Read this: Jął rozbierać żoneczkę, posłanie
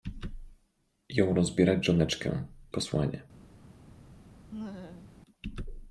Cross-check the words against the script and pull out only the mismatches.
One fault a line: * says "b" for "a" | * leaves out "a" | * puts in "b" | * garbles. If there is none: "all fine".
all fine